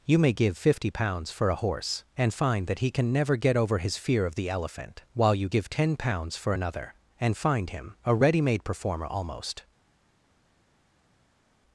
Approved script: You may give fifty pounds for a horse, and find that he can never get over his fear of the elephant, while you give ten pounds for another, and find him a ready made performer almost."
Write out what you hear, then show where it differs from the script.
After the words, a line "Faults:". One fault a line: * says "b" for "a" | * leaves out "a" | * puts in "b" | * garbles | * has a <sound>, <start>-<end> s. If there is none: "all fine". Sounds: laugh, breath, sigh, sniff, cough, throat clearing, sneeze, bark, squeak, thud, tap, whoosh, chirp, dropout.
You may give fifty pounds for a horse, and find that he can never get over his fear of the elephant, while you give ten pounds for another, and find him a ready made performer almost."
Faults:
all fine